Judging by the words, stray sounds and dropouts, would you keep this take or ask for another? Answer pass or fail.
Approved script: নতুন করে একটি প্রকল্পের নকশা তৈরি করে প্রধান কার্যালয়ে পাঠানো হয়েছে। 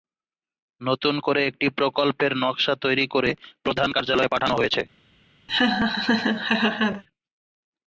fail